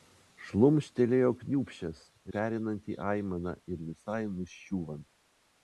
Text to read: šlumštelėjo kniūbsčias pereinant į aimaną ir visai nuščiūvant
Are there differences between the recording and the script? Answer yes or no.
no